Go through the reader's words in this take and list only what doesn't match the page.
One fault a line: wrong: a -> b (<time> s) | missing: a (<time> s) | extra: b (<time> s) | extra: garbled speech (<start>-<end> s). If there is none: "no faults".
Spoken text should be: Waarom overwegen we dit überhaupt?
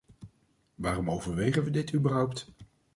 no faults